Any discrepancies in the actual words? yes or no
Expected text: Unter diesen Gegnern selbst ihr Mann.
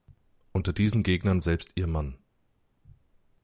no